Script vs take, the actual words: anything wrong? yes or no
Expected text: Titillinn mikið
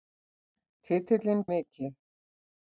no